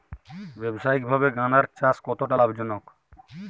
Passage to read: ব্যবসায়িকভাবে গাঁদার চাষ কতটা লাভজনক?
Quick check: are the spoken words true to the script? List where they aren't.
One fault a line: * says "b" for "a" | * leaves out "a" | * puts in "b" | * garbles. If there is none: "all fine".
all fine